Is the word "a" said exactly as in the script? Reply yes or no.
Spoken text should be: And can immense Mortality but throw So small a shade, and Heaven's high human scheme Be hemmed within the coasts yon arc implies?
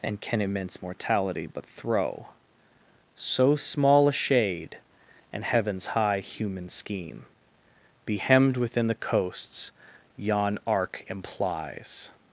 yes